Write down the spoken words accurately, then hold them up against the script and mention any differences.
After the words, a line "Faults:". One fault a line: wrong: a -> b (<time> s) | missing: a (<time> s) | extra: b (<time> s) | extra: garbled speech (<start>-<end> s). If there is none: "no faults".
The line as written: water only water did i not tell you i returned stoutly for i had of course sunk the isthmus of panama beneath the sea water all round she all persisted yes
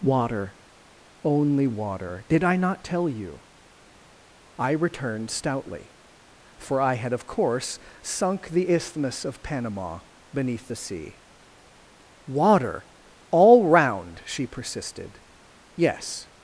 water only water did i not tell you i returned stoutly for i had of course sunk the isthmus of panama beneath the sea water all round she persisted yes
Faults:
missing: all (14.5 s)